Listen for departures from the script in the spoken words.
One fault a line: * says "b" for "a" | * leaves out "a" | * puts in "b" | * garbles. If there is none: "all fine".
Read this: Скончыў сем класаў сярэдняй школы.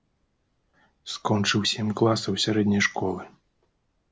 all fine